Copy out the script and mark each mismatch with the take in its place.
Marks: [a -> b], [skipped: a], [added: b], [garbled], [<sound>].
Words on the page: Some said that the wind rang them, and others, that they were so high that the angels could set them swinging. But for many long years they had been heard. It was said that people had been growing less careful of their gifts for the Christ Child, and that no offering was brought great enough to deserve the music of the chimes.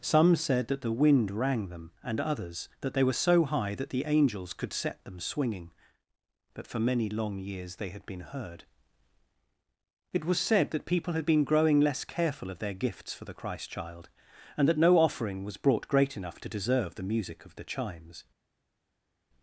Some said that the wind rang them, and others, that they were so high that the angels could set them swinging. But for many long years they had been heard. It was said that people had been growing less careful of their gifts for the Christ Child, and that no offering was brought great enough to deserve the music of the chimes.